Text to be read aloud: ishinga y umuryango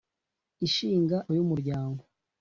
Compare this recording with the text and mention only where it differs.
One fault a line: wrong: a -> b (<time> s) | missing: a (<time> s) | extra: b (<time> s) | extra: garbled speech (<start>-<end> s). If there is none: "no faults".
no faults